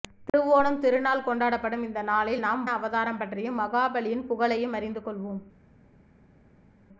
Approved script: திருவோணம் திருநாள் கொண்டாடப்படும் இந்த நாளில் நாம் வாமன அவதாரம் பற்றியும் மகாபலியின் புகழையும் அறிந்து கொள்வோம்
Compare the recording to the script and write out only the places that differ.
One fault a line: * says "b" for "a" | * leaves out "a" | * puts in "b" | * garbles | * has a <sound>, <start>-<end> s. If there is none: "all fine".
* leaves out "வாமன"